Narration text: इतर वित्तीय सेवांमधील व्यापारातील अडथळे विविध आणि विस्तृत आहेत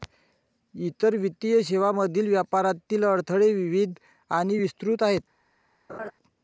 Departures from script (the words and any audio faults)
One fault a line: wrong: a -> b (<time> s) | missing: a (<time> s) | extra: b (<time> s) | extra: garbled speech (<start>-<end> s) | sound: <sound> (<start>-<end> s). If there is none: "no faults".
sound: laugh (5.9-6.1 s)